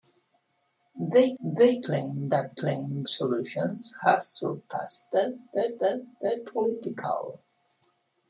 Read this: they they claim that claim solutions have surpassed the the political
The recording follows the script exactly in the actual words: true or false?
true